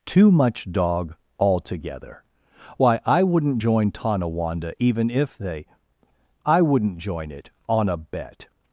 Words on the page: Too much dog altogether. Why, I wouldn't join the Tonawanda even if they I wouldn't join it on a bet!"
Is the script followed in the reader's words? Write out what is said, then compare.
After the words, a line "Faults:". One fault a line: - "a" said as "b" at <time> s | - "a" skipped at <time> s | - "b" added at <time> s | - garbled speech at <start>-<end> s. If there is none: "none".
Too much dog altogether. Why, I wouldn't join Tonawanda even if they I wouldn't join it on a bet!"
Faults:
- "the" skipped at 3.9 s